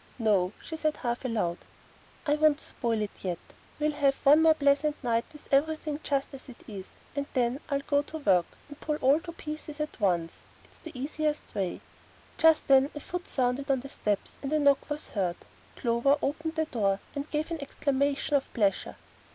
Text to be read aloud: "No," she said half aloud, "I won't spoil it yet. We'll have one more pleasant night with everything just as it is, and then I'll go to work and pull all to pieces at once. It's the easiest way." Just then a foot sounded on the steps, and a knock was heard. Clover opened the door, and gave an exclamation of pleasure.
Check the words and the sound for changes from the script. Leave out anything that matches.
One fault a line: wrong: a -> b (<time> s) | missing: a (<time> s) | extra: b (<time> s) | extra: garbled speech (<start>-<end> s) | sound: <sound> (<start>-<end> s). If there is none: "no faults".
no faults